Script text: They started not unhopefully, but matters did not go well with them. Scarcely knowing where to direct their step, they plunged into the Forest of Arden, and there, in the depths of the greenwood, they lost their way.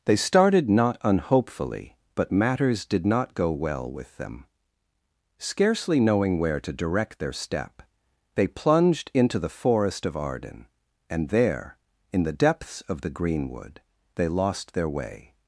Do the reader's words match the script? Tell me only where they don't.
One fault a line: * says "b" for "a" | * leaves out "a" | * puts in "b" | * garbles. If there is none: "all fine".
all fine